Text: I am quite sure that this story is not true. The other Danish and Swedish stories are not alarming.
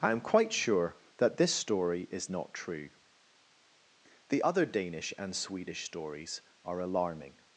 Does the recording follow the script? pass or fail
fail